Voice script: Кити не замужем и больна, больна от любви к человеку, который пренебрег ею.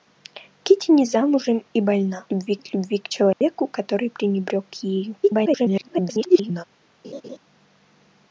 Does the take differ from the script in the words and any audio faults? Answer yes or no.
yes